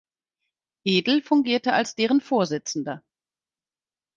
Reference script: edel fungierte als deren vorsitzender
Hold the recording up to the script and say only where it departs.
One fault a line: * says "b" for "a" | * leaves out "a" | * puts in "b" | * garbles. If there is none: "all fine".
all fine